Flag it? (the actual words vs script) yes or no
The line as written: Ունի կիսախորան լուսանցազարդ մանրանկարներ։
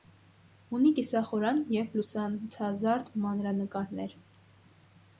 yes